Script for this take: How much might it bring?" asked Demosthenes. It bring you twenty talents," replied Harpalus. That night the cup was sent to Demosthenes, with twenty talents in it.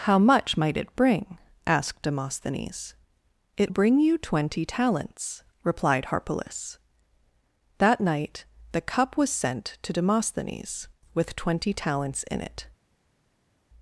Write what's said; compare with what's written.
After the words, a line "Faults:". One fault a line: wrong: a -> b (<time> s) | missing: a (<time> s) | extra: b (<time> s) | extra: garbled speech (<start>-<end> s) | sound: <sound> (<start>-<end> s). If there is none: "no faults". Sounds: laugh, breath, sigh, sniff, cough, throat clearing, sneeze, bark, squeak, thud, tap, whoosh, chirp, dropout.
How much might it bring?" asked Demosthenes. It bring you twenty talents," replied Harpalus. That night the cup was sent to Demosthenes, with twenty talents in it.
Faults:
no faults